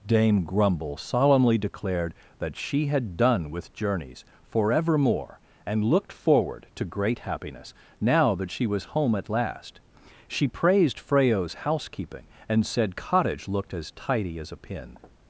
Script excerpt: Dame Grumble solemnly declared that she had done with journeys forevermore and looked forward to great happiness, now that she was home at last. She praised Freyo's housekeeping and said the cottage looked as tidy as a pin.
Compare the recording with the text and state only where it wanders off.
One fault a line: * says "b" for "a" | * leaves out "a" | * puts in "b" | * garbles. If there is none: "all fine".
* leaves out "the"